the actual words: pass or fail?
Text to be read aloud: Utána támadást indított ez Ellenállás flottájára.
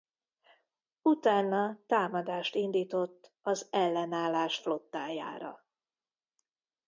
fail